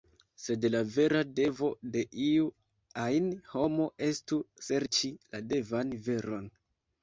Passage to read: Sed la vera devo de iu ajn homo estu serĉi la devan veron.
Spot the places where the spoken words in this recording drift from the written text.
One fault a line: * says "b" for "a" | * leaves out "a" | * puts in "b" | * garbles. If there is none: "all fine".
all fine